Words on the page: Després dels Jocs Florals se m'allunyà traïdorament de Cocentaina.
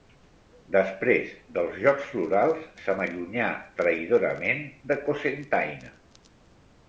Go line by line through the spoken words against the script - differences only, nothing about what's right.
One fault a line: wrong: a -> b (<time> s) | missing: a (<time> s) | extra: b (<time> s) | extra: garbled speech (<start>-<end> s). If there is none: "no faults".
no faults